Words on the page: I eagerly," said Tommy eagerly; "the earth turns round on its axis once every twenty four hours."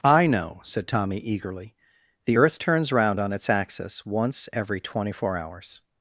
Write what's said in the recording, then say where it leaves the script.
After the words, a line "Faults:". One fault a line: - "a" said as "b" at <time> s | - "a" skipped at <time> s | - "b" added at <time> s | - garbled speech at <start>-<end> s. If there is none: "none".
I know," said Tommy eagerly; "the earth turns round on its axis once every twenty four hours."
Faults:
- "eagerly" said as "know" at 0.2 s